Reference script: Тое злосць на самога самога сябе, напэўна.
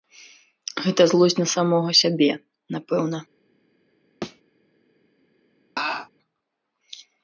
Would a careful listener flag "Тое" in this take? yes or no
yes